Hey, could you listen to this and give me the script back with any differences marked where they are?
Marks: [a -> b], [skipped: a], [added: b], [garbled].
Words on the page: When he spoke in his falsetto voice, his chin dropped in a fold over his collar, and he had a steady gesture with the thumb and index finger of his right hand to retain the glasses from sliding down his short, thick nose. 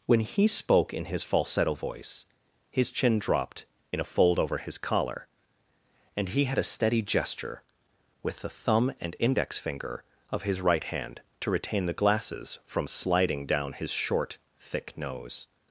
When he spoke in his falsetto voice, his chin dropped in a fold over his collar, and he had a steady gesture with the thumb and index finger of his right hand to retain the glasses from sliding down his short, thick nose.